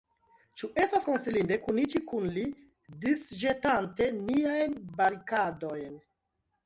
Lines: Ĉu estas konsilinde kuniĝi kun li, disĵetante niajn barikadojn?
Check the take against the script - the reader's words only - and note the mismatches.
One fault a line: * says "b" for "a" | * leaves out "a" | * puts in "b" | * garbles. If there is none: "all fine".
all fine